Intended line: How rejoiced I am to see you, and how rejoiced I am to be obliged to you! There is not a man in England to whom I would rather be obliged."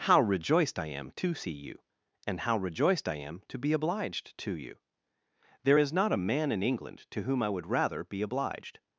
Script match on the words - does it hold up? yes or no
yes